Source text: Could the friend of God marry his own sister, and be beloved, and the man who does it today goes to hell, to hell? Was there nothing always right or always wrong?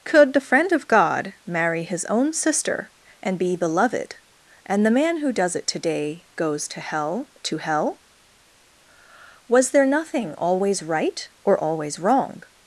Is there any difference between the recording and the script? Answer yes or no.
no